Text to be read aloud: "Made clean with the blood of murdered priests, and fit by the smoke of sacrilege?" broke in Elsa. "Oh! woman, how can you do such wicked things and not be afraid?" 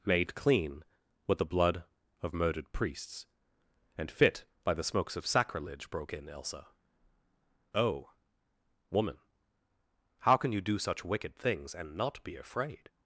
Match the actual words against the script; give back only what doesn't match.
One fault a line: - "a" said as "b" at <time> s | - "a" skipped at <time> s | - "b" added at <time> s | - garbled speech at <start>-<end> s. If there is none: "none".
- "smoke" said as "smokes" at 4.8 s